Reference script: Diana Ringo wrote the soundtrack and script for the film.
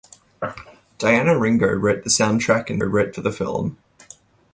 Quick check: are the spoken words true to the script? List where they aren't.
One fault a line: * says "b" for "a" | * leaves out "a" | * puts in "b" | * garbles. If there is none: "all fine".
* says "wrote" for "script"